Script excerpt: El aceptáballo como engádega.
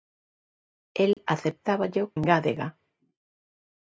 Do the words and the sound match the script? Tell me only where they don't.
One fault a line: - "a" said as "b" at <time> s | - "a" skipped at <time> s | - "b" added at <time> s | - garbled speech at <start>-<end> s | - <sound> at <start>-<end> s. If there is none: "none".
- dropout at 1.1-1.2 s
- "como" skipped at 2.1 s